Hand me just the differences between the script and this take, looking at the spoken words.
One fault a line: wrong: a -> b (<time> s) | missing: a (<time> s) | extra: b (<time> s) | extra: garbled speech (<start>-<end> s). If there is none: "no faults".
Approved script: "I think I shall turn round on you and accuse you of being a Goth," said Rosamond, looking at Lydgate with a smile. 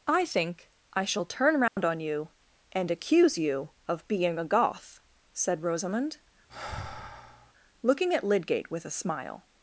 no faults